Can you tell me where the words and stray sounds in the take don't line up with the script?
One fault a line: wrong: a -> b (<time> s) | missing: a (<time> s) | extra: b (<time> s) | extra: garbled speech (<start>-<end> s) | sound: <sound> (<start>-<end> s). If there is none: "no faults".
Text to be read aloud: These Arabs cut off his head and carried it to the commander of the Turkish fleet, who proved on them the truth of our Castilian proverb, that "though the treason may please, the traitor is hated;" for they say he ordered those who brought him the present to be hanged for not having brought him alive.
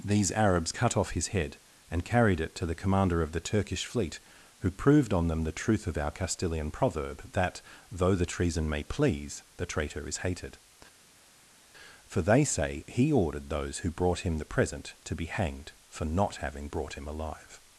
no faults